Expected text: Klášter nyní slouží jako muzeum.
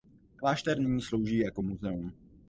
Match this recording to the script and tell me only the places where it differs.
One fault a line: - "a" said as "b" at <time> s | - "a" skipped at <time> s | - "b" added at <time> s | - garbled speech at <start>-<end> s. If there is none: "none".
none